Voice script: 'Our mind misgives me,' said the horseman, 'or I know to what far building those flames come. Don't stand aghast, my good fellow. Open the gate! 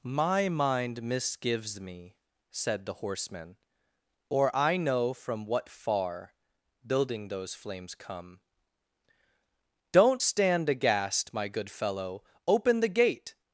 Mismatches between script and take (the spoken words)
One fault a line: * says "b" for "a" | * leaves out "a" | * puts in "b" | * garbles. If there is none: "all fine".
* says "My" for "Our"
* says "from" for "to"